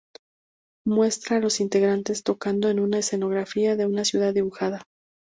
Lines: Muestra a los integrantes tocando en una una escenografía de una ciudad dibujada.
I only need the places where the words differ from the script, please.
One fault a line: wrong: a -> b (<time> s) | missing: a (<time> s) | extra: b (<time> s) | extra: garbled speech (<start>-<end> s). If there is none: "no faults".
missing: una (3.0 s)